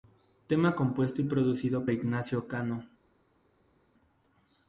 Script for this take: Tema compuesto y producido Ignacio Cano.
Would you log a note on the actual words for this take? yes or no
no